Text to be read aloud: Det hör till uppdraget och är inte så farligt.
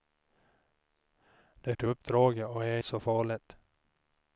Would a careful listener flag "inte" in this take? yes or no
yes